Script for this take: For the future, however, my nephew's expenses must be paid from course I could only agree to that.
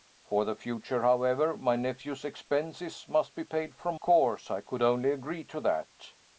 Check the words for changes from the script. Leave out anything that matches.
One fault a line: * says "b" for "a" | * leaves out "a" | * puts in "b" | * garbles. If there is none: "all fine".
all fine